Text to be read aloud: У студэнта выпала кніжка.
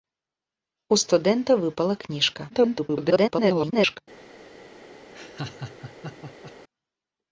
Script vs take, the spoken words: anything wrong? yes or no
yes